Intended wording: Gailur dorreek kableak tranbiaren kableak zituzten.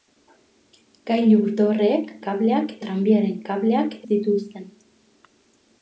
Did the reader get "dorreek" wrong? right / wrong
right